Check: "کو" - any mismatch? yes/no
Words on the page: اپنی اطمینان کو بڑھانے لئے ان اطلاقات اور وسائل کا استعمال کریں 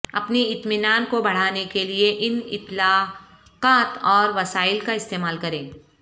no